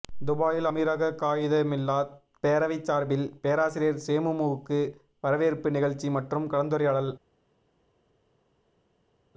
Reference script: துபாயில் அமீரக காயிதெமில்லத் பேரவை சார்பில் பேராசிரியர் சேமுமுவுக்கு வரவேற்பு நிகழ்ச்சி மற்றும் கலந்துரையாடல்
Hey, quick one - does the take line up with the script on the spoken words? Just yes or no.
yes